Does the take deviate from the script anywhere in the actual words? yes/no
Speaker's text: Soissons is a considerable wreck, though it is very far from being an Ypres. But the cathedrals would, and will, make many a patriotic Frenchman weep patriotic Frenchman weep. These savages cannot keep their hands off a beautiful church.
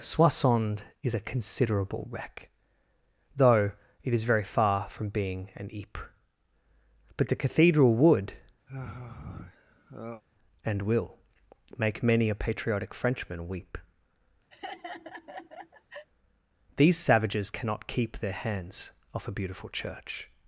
yes